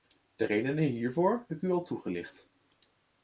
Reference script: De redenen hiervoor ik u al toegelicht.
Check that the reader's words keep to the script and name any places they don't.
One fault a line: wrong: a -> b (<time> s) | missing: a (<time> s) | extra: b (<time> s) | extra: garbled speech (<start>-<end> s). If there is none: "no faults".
no faults